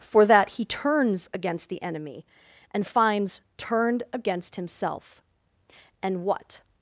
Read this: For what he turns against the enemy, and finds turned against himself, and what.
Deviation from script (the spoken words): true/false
true